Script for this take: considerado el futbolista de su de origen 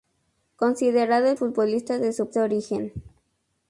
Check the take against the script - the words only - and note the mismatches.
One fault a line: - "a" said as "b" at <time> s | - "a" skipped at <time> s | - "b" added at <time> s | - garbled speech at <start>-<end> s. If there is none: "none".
none